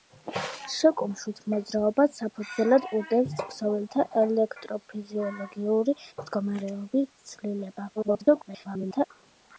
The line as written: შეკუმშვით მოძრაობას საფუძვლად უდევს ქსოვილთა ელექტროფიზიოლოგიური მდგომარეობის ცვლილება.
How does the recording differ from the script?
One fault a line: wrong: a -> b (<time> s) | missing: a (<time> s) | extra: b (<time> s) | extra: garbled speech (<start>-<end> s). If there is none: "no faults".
extra: garbled speech (8.0-9.1 s)